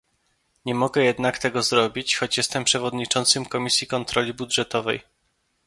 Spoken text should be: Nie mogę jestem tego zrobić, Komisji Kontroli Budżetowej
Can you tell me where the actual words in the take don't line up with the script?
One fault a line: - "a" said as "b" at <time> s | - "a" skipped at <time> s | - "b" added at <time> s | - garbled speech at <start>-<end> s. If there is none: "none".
- "jestem" said as "jednak" at 1.0 s
- "choć jestem przewodniczącym" added at 2.1 s